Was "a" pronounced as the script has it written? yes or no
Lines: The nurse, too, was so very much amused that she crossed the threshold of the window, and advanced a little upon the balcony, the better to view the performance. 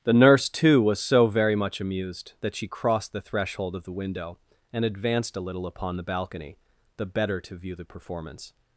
yes